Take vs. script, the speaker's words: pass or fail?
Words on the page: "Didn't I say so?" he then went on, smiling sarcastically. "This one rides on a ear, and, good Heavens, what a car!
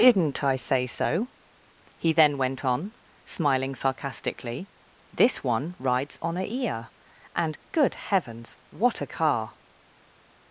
pass